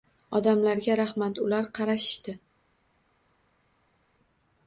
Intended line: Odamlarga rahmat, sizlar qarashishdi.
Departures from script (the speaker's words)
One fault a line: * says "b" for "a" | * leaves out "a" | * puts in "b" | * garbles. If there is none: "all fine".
* says "ular" for "sizlar"